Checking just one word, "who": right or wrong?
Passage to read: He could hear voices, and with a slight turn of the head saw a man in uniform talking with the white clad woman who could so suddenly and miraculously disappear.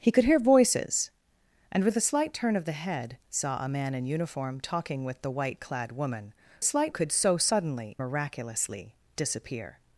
wrong